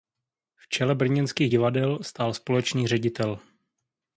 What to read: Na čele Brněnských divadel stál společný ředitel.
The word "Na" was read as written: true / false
false